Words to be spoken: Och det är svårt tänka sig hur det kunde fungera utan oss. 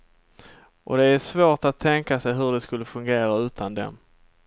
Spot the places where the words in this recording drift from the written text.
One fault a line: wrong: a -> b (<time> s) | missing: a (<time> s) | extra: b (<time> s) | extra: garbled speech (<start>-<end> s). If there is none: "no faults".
extra: att (1.6 s)
wrong: kunde -> skulle (2.6 s)
wrong: oss -> dem (3.7 s)